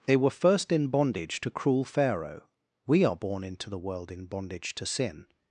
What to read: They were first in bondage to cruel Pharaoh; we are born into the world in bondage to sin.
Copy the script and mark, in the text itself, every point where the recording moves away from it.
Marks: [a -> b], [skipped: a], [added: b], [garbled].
They were first in bondage to cruel Pharaoh; we are born into the world in bondage to sin.